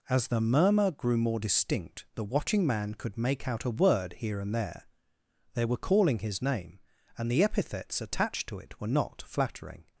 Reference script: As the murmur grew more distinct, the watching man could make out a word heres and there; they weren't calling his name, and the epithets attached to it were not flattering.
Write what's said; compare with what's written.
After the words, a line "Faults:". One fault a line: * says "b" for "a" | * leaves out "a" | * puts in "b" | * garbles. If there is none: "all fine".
As the murmur grew more distinct, the watching man could make out a word here and there; they were calling his name, and the epithets attached to it were not flattering.
Faults:
* says "here" for "heres"
* says "were" for "weren't"